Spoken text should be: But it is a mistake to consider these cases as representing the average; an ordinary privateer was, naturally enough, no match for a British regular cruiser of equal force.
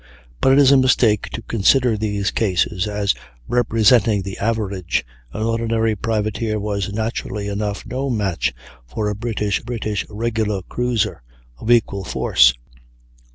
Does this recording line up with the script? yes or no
no